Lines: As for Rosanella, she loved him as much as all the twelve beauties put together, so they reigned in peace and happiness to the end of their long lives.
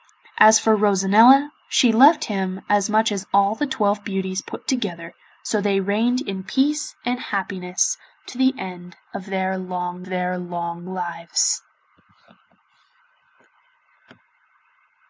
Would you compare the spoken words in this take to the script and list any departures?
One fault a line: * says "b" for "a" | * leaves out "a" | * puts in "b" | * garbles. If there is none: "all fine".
* puts in "their long"